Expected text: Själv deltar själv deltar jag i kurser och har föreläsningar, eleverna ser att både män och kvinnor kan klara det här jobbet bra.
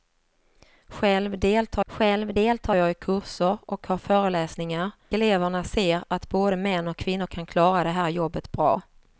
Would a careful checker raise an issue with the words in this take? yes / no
no